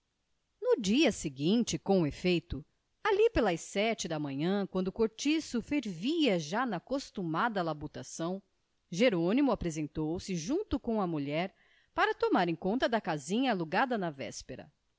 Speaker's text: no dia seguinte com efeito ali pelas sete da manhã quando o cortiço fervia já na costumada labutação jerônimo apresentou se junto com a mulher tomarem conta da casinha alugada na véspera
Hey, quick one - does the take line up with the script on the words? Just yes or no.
no